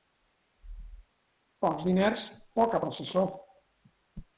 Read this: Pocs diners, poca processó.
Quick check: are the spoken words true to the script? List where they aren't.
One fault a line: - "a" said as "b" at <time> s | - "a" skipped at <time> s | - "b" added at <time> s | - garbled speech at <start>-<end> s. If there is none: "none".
none